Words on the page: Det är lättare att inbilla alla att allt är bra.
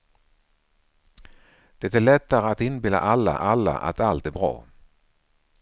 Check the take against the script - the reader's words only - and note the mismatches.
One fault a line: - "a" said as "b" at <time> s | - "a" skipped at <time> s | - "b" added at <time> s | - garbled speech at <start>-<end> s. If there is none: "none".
- "alla" added at 3.4 s